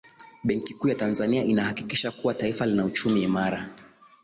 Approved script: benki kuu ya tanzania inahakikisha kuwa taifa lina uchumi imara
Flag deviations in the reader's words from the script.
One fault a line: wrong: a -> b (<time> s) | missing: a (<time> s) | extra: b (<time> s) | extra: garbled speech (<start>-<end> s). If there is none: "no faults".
no faults